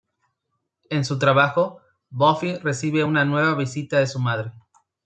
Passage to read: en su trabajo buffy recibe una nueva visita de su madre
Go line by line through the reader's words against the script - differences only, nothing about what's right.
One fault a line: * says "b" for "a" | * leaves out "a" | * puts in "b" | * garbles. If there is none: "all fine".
all fine